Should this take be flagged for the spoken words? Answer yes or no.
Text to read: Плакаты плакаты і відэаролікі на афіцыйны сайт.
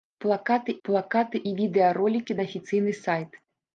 no